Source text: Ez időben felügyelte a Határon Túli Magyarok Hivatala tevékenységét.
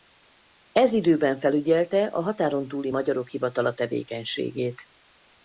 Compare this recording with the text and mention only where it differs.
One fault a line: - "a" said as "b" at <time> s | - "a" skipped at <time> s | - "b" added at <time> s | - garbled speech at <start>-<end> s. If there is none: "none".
none